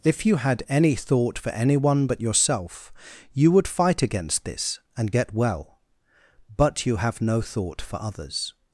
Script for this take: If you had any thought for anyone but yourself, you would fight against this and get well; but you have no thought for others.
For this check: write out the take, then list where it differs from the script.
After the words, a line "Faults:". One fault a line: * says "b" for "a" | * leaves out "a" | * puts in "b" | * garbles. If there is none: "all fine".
If you had any thought for anyone but yourself, you would fight against this and get well; but you have no thought for others.
Faults:
all fine